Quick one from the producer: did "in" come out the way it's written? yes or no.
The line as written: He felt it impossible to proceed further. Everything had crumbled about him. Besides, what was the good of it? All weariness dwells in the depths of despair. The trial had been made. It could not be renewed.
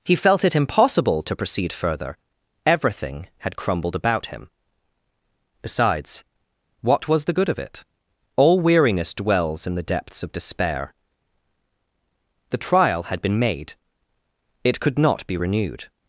yes